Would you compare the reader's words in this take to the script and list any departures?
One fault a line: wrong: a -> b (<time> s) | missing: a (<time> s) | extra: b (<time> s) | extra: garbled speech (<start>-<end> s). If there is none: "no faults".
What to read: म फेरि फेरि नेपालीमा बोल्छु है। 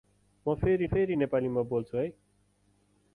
no faults